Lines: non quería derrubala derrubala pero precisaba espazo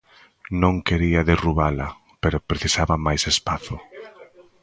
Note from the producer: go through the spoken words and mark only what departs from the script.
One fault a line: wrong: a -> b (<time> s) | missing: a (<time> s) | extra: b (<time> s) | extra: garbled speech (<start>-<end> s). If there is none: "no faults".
missing: derrubala (1.9 s)
extra: máis (3.1 s)